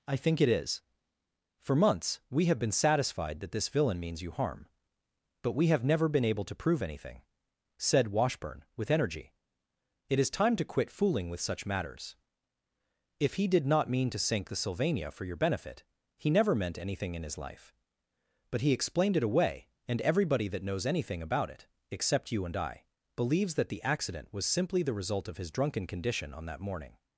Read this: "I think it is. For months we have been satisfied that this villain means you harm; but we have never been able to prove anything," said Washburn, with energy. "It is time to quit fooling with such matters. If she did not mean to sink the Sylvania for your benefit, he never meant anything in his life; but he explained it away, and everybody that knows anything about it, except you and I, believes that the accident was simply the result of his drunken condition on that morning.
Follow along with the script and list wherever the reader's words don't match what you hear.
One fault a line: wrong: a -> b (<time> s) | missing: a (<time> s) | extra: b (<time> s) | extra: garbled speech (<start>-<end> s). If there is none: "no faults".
wrong: she -> he (13.3 s)